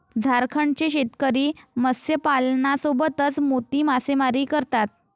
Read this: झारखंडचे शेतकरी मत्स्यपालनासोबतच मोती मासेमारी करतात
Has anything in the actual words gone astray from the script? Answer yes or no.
no